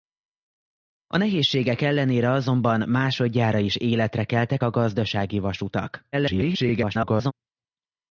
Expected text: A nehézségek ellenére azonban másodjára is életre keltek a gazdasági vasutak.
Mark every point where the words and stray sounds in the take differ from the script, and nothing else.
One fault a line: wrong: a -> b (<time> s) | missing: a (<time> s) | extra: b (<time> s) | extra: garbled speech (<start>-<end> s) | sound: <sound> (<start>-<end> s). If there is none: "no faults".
extra: garbled speech (6.1-7.3 s)